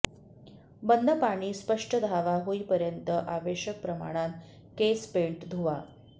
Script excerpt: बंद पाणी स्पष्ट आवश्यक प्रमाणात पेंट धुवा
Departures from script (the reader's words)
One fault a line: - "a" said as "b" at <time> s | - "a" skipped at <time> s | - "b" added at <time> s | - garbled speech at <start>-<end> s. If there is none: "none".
- "धावा होईपर्यंत" added at 2.0 s
- "केस" added at 4.8 s